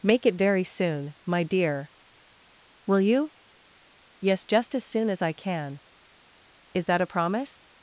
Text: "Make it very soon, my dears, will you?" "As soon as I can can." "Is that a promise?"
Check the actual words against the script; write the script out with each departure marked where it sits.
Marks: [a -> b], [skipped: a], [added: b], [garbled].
"Make it very soon, my [dears, -> dear] will you?" [added: Yes just] "As soon as I can [skipped: can."] "Is that a promise?"